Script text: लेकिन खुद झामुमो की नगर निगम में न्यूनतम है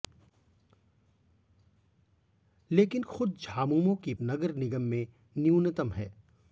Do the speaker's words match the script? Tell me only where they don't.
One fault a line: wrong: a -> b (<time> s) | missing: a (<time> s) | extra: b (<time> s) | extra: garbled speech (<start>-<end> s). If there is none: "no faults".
no faults